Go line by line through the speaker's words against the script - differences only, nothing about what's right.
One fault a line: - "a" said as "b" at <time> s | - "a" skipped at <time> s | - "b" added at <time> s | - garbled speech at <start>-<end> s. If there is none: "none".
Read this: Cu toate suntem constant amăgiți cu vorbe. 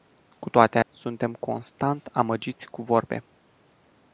none